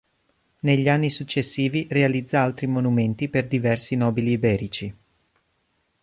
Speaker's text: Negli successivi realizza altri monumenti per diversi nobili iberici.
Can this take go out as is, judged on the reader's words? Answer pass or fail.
fail